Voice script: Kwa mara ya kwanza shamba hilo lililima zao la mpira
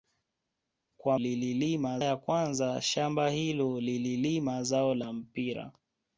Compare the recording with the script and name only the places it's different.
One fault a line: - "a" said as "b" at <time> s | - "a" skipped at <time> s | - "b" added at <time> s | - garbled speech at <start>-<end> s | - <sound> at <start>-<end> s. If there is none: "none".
- "mara" said as "lililima" at 1.2 s